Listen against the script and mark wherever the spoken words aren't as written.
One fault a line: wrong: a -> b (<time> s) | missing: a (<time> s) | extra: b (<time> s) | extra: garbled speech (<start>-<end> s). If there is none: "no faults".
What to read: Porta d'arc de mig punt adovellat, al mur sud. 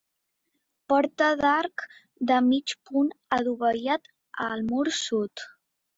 no faults